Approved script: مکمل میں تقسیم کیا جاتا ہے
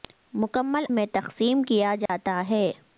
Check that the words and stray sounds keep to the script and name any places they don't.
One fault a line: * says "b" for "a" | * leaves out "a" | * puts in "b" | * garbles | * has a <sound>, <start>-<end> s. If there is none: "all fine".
* has a dropout, 2.1-2.1 s